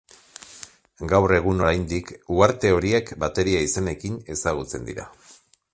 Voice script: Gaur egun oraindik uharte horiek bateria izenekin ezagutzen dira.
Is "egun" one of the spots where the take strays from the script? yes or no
no